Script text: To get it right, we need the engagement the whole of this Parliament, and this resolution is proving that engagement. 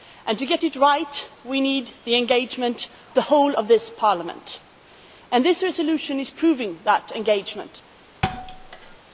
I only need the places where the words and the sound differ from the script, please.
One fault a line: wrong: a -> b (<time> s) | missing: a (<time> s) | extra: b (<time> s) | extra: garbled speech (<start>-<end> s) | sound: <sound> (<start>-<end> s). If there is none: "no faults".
sound: thud (8.2-9.0 s)